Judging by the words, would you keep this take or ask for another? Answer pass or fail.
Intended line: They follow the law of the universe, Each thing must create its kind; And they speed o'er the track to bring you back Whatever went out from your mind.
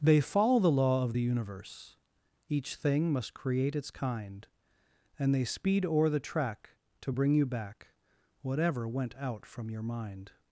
pass